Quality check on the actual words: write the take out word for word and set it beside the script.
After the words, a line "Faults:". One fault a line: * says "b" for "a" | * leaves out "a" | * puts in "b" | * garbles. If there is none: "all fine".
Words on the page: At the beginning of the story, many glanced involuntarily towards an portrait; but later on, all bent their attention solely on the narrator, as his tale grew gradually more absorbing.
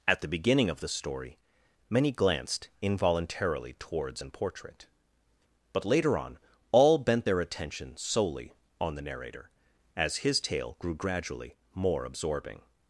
At the beginning of the story, many glanced involuntarily towards an portrait; but later on, all bent their attention solely on the narrator, as his tale grew gradually more absorbing.
Faults:
all fine